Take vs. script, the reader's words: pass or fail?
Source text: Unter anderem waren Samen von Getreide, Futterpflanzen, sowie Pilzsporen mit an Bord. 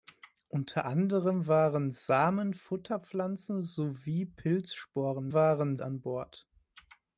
fail